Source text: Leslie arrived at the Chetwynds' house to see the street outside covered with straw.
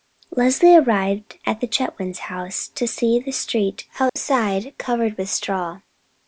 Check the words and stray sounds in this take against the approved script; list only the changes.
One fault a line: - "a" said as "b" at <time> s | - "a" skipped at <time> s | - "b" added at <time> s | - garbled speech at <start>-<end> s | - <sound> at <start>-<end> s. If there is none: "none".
- dropout at 4.1-4.2 s